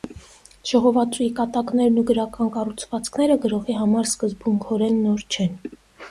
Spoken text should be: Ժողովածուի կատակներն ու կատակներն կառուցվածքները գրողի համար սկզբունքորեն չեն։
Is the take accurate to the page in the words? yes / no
no